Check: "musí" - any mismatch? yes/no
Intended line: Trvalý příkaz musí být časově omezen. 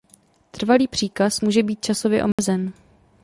yes